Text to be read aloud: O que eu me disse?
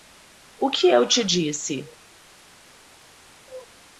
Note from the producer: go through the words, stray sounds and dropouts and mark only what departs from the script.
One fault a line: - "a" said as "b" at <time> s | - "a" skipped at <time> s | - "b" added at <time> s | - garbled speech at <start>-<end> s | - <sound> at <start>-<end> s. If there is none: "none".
- "me" said as "te" at 1.1 s